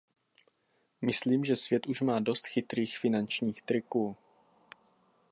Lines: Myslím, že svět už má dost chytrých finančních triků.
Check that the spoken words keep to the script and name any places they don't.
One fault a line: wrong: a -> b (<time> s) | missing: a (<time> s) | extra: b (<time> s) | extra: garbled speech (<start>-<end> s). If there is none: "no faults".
no faults